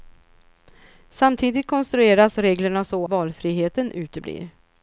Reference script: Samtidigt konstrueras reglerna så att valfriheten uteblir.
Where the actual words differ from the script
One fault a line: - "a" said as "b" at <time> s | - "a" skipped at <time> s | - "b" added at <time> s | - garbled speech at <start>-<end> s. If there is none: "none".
- "att" skipped at 3.1 s